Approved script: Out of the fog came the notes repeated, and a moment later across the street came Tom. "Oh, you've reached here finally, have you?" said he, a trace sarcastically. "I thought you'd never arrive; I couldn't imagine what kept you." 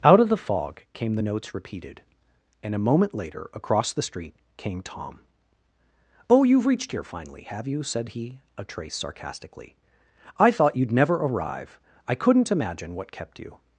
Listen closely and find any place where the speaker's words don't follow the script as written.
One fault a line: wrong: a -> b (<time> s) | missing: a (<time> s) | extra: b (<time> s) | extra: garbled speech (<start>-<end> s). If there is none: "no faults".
no faults